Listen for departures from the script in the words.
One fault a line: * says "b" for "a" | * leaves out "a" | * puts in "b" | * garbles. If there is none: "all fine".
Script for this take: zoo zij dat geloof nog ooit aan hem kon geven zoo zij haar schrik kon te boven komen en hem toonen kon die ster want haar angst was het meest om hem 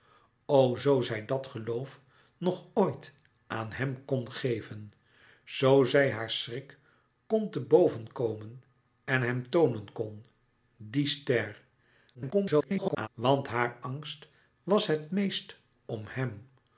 * garbles